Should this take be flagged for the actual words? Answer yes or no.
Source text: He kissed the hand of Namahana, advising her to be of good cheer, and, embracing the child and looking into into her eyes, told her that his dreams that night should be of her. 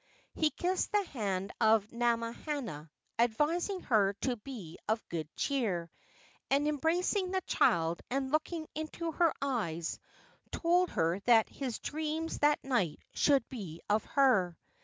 yes